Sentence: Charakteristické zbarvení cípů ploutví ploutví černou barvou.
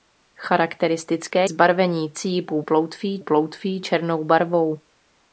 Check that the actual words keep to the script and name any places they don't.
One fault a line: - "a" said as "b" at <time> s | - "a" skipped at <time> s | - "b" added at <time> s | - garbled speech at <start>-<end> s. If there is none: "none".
none